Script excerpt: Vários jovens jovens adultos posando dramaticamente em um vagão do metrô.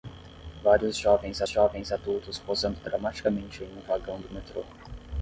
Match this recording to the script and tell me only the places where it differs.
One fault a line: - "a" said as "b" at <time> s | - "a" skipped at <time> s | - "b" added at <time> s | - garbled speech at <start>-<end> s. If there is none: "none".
none